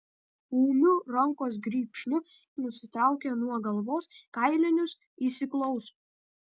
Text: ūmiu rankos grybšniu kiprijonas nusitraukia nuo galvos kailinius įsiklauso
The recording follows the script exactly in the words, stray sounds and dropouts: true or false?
false